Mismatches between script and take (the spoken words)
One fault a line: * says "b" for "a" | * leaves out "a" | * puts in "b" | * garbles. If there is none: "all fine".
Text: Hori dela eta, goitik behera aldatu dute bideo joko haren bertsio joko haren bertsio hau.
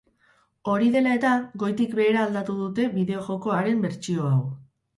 * leaves out "joko haren bertsio"